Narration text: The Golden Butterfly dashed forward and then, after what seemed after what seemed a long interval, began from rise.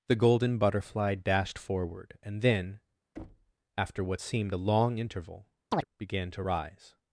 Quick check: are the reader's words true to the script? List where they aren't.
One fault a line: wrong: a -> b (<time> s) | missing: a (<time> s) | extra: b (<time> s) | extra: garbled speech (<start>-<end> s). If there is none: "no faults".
missing: after what seemed (4.5 s)
wrong: from -> to (6.3 s)